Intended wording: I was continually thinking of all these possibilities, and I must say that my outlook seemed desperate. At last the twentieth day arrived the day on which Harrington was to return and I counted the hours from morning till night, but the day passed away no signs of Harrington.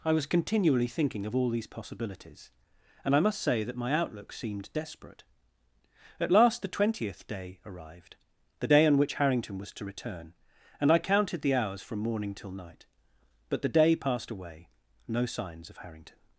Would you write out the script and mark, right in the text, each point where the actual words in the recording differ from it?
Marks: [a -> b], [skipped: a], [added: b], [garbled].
I was continually thinking of all these possibilities, and I must say that my outlook seemed desperate. At last the twentieth day arrived the day on which Harrington was to return and I counted the hours from morning till night, but the day passed away no signs of Harrington.